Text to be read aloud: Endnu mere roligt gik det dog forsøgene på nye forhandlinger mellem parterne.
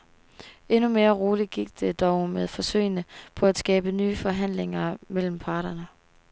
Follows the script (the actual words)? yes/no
no